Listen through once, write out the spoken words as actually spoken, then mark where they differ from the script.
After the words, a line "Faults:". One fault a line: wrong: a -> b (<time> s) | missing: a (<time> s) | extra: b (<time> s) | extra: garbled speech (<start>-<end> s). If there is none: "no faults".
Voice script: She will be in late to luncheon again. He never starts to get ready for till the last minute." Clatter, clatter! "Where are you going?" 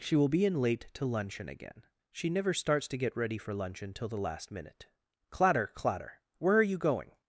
She will be in late to luncheon again. She never starts to get ready for luncheon till the last minute." Clatter, clatter! "Where are you going?"
Faults:
wrong: He -> She (2.1 s)
extra: luncheon (3.5 s)